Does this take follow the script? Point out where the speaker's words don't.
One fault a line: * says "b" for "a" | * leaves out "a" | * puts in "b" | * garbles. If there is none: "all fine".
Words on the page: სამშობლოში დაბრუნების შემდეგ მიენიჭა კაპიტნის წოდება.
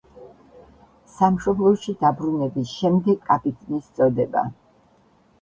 * leaves out "მიენიჭა"